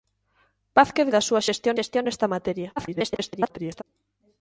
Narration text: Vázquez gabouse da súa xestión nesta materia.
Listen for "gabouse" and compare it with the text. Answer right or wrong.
wrong